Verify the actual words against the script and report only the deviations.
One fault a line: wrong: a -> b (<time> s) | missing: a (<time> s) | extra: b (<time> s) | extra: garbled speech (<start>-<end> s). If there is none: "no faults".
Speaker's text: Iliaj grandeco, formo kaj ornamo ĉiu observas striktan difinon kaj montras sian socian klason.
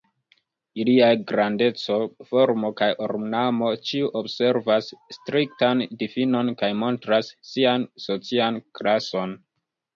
no faults